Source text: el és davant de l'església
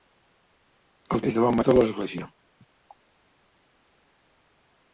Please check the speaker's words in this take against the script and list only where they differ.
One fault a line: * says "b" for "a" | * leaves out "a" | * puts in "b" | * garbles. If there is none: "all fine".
all fine